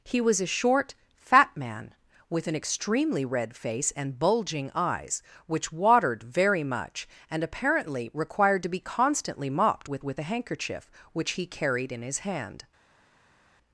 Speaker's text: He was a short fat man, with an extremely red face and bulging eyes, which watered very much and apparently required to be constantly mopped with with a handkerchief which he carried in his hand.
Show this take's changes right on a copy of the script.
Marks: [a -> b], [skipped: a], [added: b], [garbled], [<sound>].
He was a short fat man, with an extremely red face and bulging eyes, which watered very much and apparently required to be constantly mopped with with a handkerchief which he carried in his hand.